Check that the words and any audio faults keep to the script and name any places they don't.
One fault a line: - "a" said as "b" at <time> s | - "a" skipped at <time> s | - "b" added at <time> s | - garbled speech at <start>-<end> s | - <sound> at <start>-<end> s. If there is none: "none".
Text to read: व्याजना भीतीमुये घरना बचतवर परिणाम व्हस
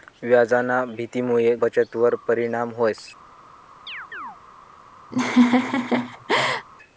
- "घरना" skipped at 1.6 s
- chirp at 3.9-4.4 s
- laugh at 5.1-6.7 s